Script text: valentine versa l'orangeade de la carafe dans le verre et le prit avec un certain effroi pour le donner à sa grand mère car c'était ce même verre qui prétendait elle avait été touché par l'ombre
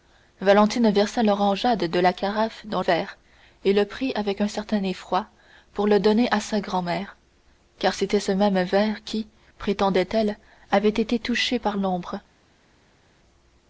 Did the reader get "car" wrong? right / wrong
right